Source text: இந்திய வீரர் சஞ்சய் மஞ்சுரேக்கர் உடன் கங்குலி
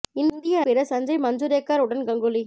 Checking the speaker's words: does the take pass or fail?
pass